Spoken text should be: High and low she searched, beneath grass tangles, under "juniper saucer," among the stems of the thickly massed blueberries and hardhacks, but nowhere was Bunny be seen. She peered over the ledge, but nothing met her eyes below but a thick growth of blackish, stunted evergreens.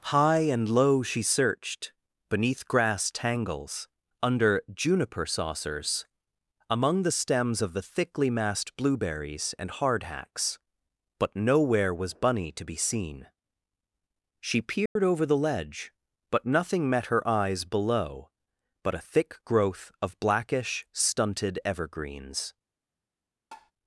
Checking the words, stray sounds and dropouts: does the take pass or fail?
fail